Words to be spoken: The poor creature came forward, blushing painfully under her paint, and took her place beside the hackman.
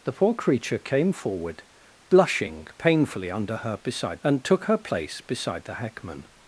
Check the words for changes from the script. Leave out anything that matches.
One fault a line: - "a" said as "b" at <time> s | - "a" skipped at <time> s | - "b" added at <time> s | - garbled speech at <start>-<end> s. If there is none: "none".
- "paint" said as "beside" at 3.8 s